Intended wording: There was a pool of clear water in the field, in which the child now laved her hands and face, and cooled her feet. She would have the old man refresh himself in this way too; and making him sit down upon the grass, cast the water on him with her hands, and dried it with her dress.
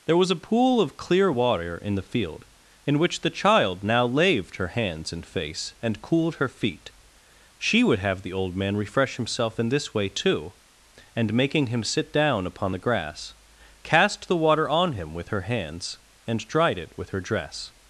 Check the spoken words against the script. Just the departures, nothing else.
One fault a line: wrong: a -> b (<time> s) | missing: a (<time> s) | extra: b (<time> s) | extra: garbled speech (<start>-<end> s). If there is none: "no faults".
no faults